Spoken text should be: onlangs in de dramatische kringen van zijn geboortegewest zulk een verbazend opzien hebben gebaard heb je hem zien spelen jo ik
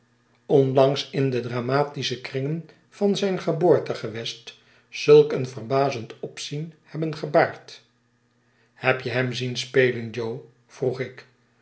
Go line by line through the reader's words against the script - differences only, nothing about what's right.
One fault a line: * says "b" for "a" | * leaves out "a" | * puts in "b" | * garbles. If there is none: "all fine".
* puts in "vroeg"